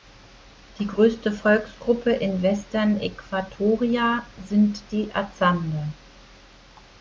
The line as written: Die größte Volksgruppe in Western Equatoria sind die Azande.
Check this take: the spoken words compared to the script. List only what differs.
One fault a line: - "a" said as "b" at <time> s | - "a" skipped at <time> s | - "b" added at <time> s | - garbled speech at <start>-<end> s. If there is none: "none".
none